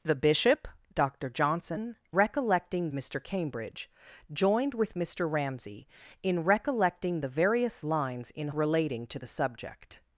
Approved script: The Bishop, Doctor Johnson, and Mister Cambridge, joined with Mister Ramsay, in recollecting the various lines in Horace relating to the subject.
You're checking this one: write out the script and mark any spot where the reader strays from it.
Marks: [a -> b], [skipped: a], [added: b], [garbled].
The Bishop, Doctor Johnson, [and -> recollecting] Mister Cambridge, joined with Mister Ramsay, in recollecting the various lines in [skipped: Horace] relating to the subject.